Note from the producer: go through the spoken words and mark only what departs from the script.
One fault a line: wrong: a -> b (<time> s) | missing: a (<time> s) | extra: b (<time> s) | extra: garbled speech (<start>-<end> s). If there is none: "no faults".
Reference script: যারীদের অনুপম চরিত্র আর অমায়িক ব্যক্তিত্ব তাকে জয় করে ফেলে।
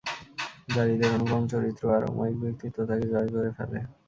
no faults